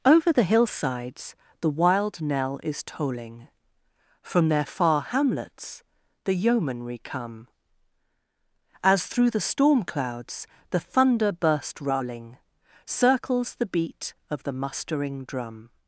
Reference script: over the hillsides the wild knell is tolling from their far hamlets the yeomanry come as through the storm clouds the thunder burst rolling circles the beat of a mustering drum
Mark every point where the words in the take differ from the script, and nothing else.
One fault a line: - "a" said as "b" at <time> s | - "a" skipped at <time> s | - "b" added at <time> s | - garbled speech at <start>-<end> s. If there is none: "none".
- "a" said as "the" at 14.4 s